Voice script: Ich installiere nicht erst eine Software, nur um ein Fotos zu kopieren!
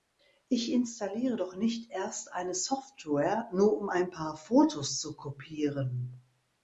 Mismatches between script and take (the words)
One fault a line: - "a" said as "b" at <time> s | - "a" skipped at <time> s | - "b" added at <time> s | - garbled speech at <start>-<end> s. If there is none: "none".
- "doch" added at 1.4 s
- "paar" added at 4.1 s